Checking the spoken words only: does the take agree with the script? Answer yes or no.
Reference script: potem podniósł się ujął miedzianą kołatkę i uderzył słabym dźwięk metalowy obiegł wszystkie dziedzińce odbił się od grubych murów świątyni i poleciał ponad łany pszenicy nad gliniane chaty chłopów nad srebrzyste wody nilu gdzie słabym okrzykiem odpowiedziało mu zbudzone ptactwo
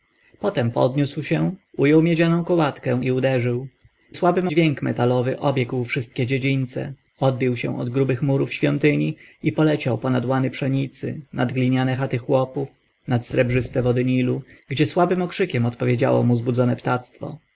yes